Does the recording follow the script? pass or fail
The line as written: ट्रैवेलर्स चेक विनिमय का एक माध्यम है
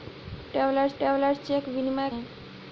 fail